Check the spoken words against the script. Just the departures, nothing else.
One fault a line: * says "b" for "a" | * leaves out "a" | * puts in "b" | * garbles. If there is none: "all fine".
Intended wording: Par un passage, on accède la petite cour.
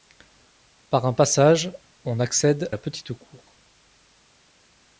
all fine